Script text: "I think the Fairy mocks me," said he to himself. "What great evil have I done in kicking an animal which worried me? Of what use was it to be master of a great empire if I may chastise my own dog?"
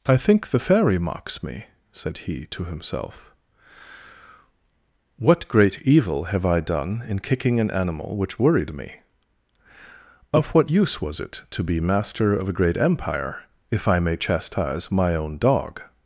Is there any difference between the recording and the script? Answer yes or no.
no